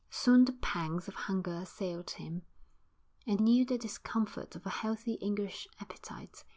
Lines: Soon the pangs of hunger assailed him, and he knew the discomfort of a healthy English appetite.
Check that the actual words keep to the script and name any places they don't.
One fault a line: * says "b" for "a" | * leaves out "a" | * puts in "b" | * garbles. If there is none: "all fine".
* leaves out "he"